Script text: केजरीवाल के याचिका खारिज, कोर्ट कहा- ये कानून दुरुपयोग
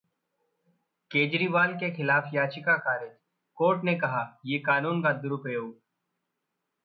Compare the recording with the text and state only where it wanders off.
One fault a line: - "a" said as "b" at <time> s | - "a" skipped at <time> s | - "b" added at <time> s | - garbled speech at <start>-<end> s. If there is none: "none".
- "खिलाफ" added at 1.9 s
- "ने" added at 3.8 s
- "का" added at 5.0 s